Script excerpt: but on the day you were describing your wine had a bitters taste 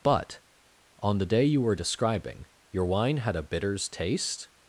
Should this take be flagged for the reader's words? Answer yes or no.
no